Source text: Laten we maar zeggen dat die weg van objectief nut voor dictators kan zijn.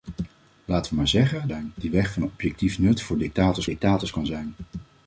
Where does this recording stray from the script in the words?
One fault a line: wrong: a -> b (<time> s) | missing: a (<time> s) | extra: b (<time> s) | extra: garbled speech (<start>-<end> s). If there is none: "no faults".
wrong: dat -> zijn (1.4 s)
extra: dictators (3.6 s)